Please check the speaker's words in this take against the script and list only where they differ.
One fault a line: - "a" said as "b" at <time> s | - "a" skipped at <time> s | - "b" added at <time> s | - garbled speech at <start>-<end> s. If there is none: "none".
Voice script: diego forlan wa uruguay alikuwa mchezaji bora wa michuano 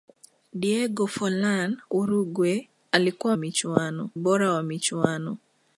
- "wa" skipped at 1.8 s
- "mchezaji" said as "michuano" at 3.3 s